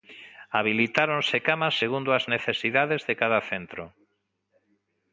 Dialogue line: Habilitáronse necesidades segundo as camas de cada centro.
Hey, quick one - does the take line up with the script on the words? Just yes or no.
no